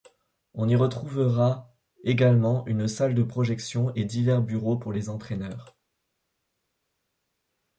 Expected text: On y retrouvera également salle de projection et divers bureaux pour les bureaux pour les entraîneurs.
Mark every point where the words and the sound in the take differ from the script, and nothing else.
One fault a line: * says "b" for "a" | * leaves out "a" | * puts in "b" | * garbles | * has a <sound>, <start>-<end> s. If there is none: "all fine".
* puts in "une"
* leaves out "bureaux pour les"